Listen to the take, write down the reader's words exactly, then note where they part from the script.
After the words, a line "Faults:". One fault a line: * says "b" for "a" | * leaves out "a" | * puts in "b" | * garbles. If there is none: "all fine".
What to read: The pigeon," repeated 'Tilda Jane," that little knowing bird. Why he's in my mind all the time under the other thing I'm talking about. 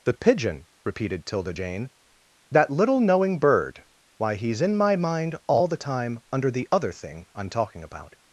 The pigeon," repeated 'Tilda Jane," that little knowing bird. Why he's in my mind all the time under the other thing I'm talking about.
Faults:
all fine